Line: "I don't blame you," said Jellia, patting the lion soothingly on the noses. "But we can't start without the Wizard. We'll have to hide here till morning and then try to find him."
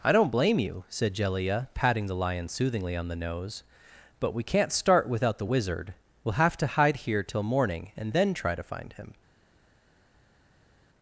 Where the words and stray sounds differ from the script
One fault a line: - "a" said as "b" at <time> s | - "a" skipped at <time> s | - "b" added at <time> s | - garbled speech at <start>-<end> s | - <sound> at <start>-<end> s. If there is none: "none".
- "noses" said as "nose" at 3.1 s